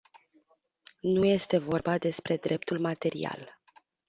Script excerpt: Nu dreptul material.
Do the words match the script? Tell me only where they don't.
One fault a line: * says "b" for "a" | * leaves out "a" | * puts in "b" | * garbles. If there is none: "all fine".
* puts in "este vorba despre"